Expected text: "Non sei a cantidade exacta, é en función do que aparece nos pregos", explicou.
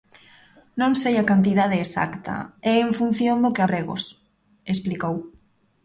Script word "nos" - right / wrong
wrong